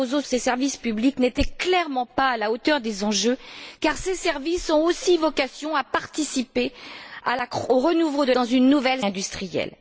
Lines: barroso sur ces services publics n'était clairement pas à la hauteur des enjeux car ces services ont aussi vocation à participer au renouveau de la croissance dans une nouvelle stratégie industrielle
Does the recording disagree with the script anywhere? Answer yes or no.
yes